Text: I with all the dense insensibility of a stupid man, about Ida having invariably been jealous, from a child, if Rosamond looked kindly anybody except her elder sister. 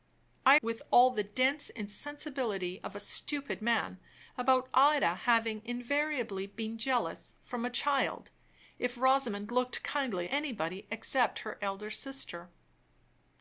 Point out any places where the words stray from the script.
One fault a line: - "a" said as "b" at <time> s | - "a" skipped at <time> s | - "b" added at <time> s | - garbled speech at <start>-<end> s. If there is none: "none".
none